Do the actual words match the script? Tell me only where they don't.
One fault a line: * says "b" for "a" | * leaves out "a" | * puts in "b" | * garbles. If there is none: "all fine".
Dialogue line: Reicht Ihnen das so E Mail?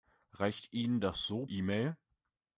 all fine